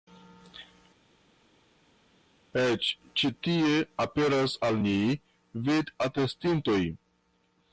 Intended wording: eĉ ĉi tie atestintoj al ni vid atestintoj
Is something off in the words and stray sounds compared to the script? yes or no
yes